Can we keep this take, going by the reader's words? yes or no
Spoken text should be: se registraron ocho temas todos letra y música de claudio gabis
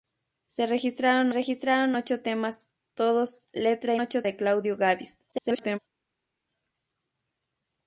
no